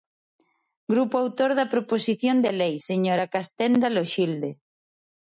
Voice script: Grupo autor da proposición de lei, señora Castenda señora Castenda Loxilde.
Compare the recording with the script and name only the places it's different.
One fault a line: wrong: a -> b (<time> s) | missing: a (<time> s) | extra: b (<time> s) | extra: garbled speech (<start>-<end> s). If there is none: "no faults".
missing: señora Castenda (3.9 s)